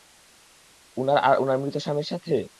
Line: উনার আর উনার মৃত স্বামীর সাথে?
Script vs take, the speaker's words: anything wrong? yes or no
no